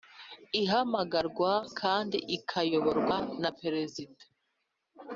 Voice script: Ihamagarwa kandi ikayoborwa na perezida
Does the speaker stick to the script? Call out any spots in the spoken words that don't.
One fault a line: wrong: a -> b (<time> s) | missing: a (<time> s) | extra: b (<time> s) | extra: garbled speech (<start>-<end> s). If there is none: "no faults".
no faults